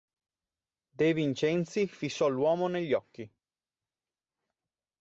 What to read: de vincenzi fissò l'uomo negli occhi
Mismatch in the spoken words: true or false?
false